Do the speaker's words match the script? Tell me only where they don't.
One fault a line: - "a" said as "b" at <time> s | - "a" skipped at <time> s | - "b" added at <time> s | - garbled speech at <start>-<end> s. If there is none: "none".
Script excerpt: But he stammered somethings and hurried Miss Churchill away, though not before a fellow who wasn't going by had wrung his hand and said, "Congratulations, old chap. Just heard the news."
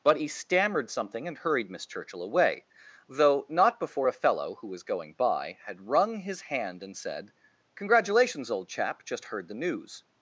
- "somethings" said as "something" at 0.9 s
- "wasn't" said as "was" at 4.7 s